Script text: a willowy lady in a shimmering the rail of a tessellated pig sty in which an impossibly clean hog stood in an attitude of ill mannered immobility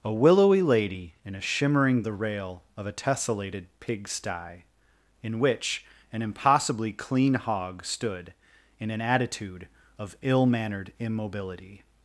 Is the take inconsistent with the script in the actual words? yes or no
no